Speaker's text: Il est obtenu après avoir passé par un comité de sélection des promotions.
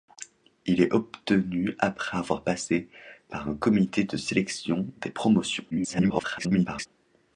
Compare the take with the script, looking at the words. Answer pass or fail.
fail